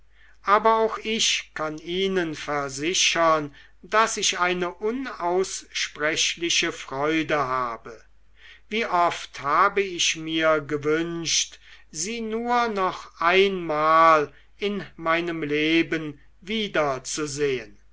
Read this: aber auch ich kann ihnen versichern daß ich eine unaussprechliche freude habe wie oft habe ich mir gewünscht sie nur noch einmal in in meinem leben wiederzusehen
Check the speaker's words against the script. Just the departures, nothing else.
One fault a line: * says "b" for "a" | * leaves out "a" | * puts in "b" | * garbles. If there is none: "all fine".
* leaves out "in"